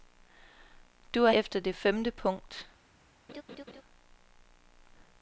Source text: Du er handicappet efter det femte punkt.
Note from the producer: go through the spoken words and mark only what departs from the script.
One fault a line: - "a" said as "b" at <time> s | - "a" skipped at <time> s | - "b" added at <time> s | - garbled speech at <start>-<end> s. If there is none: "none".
- "handicappet" skipped at 1.3 s